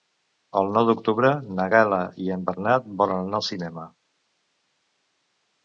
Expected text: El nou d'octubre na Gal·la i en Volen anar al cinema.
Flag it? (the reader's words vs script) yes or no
yes